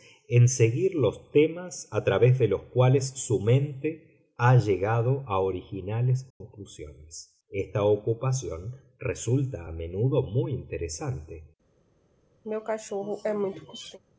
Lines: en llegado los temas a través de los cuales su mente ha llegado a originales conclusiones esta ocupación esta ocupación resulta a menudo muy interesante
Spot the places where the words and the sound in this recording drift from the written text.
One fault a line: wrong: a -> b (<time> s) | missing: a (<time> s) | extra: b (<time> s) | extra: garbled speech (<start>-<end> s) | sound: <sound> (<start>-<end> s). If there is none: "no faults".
wrong: llegado -> seguir (0.5 s)
sound: dropout (6.3-6.4 s)
missing: esta ocupación (8.8 s)
sound: throat clearing (12.4-14.0 s)